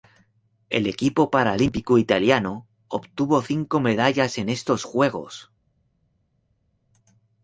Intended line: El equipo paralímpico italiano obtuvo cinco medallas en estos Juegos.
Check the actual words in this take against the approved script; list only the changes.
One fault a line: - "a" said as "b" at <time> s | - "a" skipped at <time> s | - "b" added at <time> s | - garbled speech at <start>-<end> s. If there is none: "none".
none